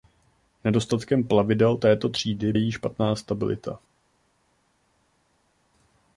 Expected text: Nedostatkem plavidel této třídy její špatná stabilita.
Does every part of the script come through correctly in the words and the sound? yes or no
yes